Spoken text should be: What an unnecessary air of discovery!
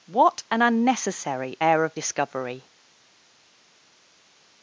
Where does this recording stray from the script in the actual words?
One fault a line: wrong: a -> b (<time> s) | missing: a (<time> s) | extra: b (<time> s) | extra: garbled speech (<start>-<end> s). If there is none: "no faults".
no faults